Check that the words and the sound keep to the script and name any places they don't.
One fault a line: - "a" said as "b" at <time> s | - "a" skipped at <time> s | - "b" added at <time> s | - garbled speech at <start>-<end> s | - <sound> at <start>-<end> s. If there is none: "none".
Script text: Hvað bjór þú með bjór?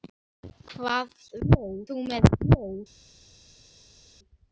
none